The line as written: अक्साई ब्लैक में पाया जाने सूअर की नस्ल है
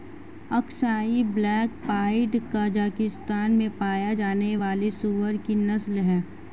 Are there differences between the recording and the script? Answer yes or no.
yes